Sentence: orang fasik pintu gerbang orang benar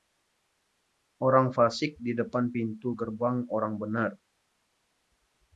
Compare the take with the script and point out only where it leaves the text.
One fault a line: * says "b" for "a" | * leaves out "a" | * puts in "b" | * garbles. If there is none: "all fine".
* puts in "di depan"